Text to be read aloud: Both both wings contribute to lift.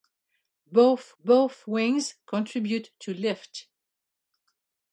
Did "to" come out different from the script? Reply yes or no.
no